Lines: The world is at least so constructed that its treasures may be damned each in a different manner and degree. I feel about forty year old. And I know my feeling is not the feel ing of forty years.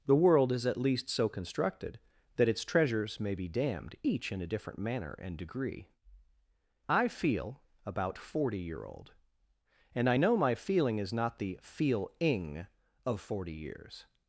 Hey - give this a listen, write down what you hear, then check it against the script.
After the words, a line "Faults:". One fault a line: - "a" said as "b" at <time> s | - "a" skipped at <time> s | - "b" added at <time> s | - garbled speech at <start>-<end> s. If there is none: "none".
The world is at least so constructed that its treasures may be damned each in a different manner and degree. I feel about forty year old. And I know my feeling is not the feel ing of forty years.
Faults:
none